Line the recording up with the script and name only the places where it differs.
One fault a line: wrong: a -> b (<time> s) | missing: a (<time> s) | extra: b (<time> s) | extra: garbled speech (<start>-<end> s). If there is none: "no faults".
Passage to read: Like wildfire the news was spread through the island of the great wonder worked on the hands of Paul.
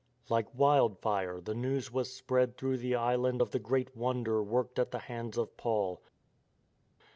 wrong: on -> at (4.8 s)